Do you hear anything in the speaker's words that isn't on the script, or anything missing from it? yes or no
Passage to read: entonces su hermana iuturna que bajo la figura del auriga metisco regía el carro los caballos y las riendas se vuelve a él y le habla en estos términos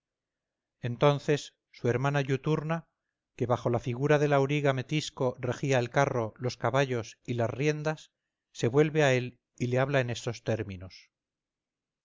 no